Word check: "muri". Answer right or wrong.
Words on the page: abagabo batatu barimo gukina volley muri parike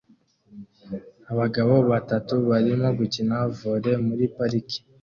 right